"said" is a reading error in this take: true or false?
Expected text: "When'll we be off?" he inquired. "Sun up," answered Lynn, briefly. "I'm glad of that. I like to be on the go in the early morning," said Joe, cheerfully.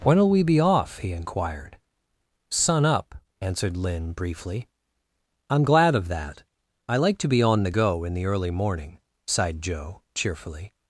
true